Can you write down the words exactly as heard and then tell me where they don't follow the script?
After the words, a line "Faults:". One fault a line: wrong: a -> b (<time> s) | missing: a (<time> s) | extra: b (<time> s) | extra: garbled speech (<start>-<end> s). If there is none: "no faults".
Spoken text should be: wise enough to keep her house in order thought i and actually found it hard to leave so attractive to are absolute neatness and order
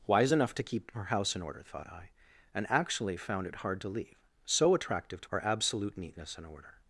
wise enough to keep her house in order thought i and actually found it hard to leave so attractive to are absolute neatness and order
Faults:
no faults